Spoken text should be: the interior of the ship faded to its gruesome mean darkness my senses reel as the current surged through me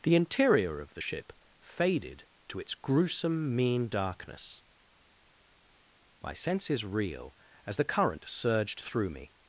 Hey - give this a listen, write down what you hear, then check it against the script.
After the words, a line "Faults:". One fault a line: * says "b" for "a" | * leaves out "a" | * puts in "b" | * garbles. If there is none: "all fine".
the interior of the ship faded to its gruesome mean darkness my senses reel as the current surged through me
Faults:
all fine